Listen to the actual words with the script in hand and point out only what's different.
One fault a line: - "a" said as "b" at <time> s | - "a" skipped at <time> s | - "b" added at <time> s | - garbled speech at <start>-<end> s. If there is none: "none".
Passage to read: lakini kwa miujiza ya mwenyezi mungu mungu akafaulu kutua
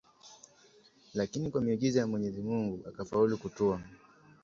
- "mungu" skipped at 2.9 s